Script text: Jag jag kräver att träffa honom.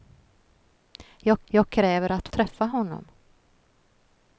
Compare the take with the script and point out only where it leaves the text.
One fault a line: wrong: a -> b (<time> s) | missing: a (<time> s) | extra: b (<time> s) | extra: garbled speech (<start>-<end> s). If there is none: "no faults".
no faults